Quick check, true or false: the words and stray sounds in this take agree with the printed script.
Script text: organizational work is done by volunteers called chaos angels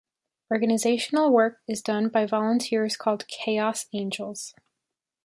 true